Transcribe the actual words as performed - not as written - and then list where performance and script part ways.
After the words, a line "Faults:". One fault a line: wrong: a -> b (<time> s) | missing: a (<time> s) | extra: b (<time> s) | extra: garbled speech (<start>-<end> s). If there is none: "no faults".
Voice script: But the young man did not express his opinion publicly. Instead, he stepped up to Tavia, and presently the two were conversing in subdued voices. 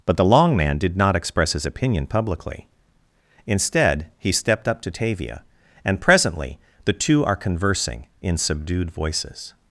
But the long man did not express his opinion publicly. Instead, he stepped up to Tavia, and presently the two are conversing in subdued voices.
Faults:
wrong: young -> long (0.2 s)
wrong: were -> are (7.2 s)